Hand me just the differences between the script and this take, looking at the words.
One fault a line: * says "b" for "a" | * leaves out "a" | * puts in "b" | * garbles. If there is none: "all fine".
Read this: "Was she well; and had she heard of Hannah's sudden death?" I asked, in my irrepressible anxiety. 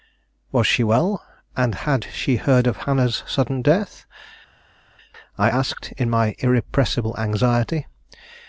all fine